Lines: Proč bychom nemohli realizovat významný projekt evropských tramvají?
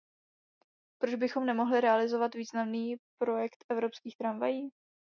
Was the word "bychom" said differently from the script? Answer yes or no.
no